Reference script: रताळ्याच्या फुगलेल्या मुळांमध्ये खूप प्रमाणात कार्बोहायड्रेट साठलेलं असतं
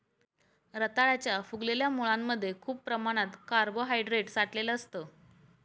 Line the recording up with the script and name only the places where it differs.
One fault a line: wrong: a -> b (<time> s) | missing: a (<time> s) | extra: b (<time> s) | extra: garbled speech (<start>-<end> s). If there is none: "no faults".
no faults